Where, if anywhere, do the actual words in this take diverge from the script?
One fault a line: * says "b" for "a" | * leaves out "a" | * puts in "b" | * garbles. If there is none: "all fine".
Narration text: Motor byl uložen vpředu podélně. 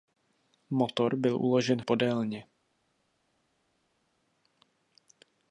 * leaves out "vpředu"